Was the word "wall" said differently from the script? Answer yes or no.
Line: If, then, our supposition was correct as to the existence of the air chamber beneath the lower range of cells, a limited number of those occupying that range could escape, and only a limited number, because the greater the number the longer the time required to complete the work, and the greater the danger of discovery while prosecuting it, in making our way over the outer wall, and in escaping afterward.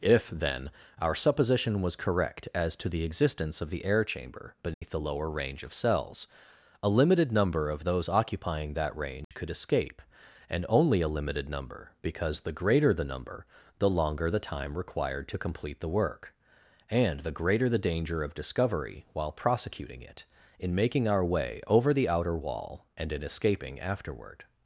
no